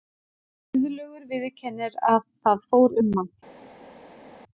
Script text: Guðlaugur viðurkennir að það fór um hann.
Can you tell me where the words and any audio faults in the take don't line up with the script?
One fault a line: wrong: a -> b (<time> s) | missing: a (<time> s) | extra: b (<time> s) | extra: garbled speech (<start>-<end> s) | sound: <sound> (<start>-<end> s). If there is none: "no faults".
no faults